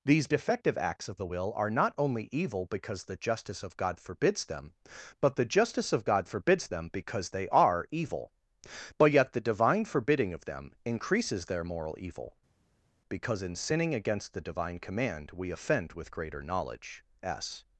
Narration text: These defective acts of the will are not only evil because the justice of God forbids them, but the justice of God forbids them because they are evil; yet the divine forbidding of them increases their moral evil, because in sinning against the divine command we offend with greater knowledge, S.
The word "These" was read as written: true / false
true